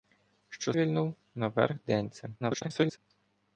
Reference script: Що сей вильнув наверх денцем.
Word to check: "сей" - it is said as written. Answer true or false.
false